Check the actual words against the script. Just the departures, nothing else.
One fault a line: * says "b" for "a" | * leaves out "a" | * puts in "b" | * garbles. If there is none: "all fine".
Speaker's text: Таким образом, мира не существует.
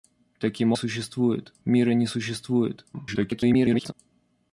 * says "существует" for "образом"
* garbles